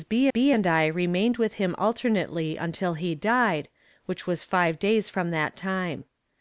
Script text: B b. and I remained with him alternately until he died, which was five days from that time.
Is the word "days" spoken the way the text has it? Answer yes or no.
yes